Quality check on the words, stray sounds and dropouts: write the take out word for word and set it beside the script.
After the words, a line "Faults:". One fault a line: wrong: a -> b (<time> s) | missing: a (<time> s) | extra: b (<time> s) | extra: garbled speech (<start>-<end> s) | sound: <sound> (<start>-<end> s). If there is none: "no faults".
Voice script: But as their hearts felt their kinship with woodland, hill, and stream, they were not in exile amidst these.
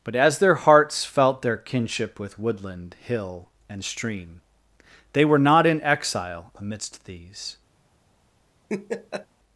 But as their hearts felt their kinship with woodland, hill, and stream, they were not in exile amidst these.
Faults:
sound: laugh (8.7-9.3 s)